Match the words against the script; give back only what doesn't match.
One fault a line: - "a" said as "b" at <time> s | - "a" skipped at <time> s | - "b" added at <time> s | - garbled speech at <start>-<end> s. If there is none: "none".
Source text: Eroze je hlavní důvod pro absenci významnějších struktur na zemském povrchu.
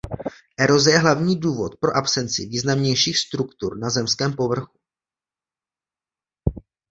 none